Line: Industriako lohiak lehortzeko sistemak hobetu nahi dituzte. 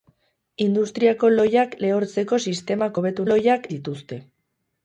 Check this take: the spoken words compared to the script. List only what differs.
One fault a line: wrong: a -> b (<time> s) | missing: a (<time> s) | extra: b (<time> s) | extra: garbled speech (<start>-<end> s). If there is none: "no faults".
wrong: nahi -> lohiak (3.2 s)